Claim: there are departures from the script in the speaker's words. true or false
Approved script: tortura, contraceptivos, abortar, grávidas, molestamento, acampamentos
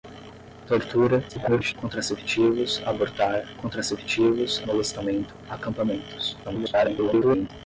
true